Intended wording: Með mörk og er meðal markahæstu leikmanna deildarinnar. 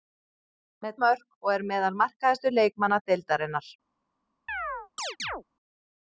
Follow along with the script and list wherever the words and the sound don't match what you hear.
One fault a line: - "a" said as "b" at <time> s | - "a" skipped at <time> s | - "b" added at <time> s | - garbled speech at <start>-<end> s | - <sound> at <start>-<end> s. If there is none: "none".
- chirp at 4.5-5.4 s